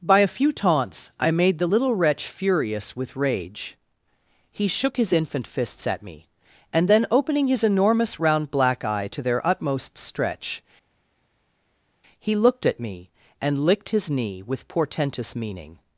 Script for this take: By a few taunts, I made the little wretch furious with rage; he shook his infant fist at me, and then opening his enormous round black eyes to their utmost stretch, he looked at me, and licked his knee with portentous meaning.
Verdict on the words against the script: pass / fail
fail